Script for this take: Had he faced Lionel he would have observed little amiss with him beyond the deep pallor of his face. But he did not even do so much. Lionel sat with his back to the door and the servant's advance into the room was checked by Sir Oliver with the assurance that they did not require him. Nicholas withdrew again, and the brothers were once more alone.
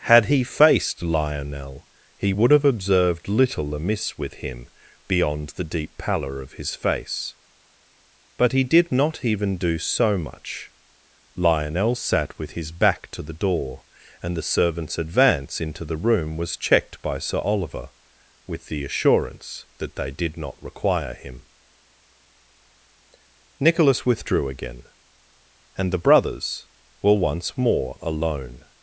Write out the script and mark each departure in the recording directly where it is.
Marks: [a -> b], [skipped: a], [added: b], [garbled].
Had he faced Lionel he would have observed little amiss with him beyond the deep pallor of his face. But he did not even do so much. Lionel sat with his back to the door and the servant's advance into the room was checked by Sir Oliver with the assurance that they did not require him. Nicholas withdrew again, and the brothers were once more alone.